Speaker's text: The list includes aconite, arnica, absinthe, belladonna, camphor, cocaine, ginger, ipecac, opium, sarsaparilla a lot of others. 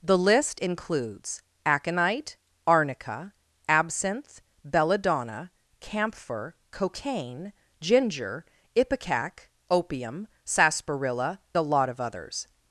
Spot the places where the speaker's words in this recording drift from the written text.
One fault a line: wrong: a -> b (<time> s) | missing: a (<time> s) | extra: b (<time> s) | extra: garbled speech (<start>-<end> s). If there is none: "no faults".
no faults